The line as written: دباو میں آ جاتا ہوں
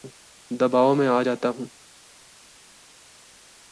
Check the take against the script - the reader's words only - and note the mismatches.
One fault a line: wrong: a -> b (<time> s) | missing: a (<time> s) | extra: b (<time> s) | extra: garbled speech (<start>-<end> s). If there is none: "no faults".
no faults